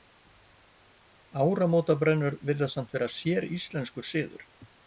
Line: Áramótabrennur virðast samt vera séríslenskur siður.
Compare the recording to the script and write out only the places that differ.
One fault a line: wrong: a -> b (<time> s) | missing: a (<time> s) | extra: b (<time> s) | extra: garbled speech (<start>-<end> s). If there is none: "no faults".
no faults